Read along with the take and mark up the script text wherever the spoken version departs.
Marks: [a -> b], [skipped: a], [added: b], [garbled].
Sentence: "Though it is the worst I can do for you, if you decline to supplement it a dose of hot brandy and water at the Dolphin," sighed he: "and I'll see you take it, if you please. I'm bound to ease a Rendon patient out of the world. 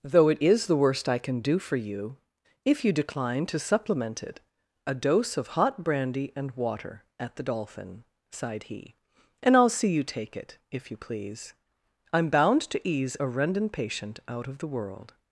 "Though it is the worst I can do for you, if you decline to supplement it a dose of hot brandy and water at the Dolphin," sighed he: "and I'll see you take it, if you please. I'm bound to ease a Rendon patient out of the world.